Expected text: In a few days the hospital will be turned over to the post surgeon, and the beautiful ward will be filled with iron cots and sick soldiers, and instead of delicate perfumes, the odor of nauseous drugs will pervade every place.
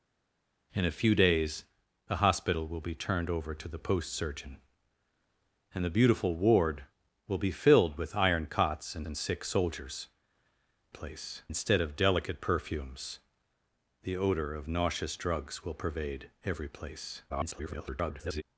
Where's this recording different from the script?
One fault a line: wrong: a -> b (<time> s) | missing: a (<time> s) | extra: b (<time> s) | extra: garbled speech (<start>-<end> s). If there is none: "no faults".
extra: and (9.0 s)
wrong: and -> place (10.9 s)
extra: garbled speech (17.3-18.4 s)